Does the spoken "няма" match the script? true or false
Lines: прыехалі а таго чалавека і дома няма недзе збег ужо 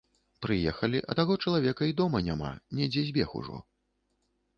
true